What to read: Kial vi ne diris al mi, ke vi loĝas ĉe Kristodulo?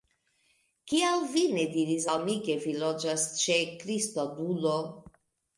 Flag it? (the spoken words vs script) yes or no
no